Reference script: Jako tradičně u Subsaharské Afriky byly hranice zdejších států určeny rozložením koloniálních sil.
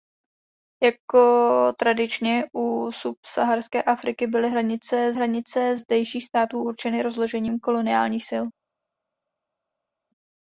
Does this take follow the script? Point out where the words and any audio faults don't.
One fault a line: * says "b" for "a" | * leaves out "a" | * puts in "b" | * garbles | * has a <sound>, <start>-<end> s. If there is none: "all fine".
* puts in "hranice"